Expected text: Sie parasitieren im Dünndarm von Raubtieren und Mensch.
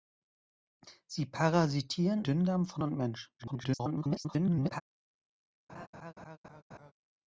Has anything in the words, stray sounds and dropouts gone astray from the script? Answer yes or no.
yes